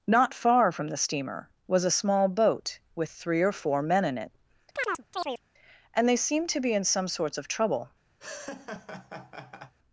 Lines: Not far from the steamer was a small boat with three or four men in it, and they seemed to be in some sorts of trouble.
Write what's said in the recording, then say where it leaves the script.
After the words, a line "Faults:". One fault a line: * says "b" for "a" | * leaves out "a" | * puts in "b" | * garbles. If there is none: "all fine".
Not far from the steamer was a small boat with three or four men in it, and they seemed to be in some sorts of trouble.
Faults:
all fine